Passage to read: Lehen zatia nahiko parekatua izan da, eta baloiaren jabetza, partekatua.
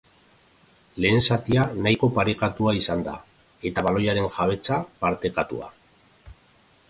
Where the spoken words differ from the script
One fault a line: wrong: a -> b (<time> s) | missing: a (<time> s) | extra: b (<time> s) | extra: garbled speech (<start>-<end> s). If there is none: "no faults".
no faults